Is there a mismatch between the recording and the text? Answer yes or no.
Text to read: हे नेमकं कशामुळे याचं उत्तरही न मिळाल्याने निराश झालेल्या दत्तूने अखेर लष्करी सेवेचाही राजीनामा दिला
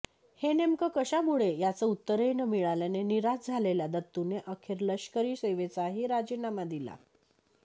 no